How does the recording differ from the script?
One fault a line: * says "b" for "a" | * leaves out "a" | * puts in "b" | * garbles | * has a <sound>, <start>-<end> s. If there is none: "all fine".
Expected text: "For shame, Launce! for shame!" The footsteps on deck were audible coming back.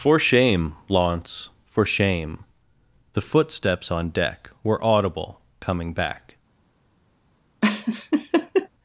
* has a laugh, 7.6-8.7 s